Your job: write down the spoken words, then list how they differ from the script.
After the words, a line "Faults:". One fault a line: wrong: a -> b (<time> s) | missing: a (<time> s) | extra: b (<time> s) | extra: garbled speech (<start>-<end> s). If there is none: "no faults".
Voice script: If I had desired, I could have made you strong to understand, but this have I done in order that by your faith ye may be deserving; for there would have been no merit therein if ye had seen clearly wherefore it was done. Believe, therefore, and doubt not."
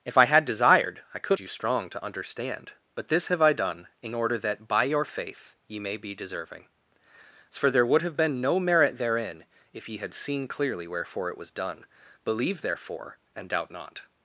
If I had desired, I could you strong to understand, but this have I done in order that by your faith ye may be deserving; for there would have been no merit therein if ye had seen clearly wherefore it was done. Believe, therefore, and doubt not."
Faults:
missing: have made (1.4 s)